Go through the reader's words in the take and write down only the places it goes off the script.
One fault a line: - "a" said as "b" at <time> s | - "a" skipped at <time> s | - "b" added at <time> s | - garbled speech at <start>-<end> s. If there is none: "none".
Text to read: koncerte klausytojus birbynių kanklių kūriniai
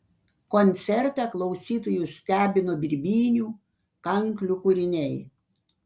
- "stebino" added at 2.2 s